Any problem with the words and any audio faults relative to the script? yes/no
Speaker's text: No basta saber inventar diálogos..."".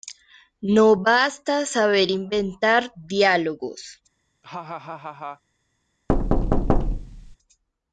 yes